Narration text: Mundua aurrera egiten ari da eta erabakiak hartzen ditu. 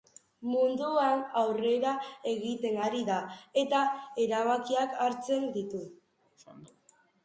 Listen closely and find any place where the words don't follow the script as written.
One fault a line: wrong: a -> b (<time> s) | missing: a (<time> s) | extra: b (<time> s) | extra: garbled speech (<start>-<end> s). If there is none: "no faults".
no faults